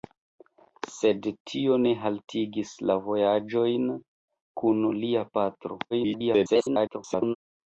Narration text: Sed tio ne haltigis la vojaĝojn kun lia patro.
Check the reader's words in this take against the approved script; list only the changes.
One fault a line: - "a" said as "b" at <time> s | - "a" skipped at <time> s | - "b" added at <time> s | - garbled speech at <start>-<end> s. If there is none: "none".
- garbled speech at 5.9-7.4 s